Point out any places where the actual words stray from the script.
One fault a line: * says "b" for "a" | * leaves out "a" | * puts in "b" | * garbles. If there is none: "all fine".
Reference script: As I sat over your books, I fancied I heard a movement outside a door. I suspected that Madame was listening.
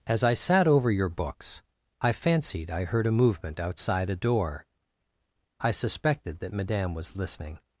all fine